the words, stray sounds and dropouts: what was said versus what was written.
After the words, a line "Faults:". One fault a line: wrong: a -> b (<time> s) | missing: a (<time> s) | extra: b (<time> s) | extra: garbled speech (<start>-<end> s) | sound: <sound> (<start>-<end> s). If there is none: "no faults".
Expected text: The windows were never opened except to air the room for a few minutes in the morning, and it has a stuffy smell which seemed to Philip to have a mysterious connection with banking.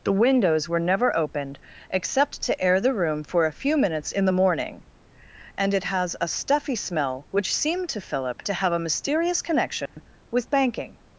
The windows were never opened except to air the room for a few minutes in the morning, and it has a stuffy smell which seemed to Philip to have a mysterious connection with banking.
Faults:
sound: dropout (9.9-10.0 s)